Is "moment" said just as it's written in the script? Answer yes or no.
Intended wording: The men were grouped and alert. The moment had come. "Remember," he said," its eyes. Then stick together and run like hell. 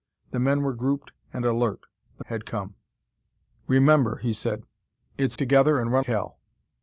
no